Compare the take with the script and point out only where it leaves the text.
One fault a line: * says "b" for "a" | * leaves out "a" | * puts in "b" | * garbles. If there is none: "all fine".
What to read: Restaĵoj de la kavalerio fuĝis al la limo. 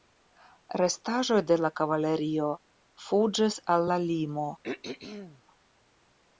all fine